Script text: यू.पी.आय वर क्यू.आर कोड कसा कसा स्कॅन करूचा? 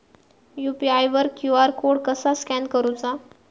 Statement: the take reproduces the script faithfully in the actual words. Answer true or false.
false